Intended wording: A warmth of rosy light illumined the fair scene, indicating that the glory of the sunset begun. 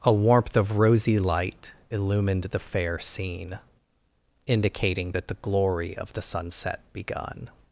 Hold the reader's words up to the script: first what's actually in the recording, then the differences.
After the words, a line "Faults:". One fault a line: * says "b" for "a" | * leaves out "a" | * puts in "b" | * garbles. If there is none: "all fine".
A warmth of rosy light illumined the fair scene, indicating that the glory of the sunset begun.
Faults:
all fine